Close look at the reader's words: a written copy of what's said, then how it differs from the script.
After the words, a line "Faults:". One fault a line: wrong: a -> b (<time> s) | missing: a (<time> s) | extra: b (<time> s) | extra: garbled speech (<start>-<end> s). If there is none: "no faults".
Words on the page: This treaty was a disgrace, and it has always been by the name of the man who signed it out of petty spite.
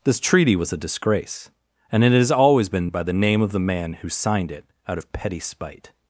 This treaty was a disgrace, and it has always been by the name of the man who signed it out of petty spite.
Faults:
no faults